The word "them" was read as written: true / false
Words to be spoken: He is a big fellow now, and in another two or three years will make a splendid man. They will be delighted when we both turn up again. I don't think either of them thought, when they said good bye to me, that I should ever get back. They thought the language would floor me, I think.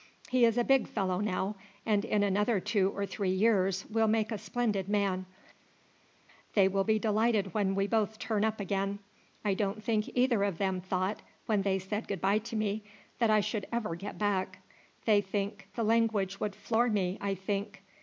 true